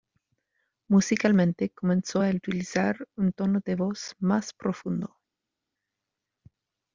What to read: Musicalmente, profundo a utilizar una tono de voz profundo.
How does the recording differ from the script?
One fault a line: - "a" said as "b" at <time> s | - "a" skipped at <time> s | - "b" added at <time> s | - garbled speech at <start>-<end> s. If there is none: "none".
- "profundo" said as "comenzó" at 1.7 s
- "una" said as "un" at 3.2 s
- "más" added at 4.2 s